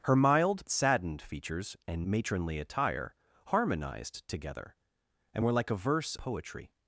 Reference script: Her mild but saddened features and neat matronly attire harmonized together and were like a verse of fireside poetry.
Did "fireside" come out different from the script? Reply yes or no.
yes